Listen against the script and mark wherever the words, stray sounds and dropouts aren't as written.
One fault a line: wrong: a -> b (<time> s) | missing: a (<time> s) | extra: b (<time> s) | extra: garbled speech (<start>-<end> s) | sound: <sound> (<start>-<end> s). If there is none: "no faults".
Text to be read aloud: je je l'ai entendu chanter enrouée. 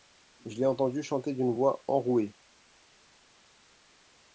missing: je (0.6 s)
extra: d'une voix (1.3 s)